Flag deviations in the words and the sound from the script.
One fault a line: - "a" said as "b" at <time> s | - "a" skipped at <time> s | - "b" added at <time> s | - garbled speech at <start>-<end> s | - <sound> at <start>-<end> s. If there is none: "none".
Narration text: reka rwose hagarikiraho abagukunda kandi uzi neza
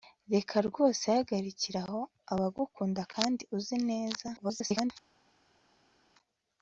- garbled speech at 4.4-4.9 s